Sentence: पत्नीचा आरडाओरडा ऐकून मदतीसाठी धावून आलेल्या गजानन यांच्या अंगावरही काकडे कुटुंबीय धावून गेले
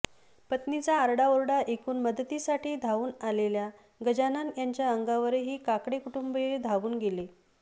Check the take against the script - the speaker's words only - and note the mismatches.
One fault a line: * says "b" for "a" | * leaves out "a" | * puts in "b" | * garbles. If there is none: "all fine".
all fine